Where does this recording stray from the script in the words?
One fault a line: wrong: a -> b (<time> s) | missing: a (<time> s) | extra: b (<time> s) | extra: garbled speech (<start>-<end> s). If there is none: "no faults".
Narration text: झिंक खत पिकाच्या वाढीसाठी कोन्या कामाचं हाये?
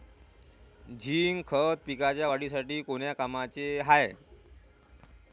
no faults